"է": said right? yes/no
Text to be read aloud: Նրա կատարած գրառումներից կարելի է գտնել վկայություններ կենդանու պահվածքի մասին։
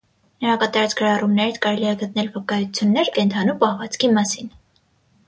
yes